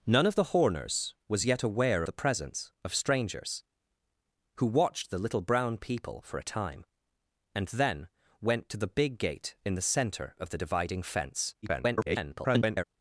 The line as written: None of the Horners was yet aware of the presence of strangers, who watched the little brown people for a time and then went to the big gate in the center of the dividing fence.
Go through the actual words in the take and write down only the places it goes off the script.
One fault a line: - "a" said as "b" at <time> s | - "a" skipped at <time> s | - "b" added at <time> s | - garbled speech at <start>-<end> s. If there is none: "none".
- "of" skipped at 2.0 s
- garbled speech at 11.6-12.8 s